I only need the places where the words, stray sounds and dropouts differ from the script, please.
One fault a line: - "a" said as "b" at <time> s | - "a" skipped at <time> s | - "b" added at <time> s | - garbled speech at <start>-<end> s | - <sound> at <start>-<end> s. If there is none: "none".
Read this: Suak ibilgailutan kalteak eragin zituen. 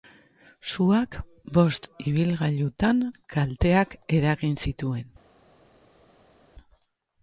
- "bost" added at 1.6 s